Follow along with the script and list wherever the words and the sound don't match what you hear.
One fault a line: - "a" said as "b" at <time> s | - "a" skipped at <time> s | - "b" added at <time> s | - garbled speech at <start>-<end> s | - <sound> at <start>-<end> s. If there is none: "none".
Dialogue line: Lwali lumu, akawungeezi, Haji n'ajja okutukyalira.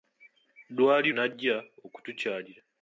- "lumu akawungeezi Haji" skipped at 1.1 s